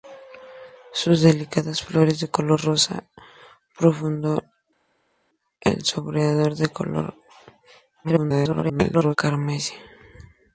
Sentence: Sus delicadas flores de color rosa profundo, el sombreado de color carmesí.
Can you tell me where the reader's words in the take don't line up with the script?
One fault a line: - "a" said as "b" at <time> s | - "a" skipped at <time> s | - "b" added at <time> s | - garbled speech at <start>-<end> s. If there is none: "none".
- garbled speech at 8.0-9.2 s